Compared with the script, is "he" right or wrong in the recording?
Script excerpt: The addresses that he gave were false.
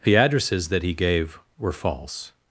right